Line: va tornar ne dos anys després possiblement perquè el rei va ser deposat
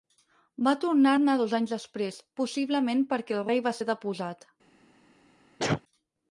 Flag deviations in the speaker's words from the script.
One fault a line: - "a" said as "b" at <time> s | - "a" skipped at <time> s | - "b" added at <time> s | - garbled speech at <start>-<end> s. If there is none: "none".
none